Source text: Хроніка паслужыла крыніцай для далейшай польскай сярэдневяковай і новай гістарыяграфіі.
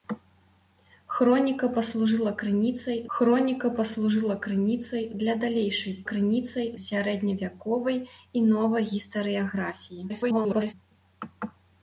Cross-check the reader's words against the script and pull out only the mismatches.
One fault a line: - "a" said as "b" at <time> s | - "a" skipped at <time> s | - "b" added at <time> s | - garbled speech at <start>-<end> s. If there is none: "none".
- "хроніка паслужыла крыніцай" added at 3.1 s
- "польскай" said as "крыніцай" at 6.1 s
- garbled speech at 10.1-10.7 s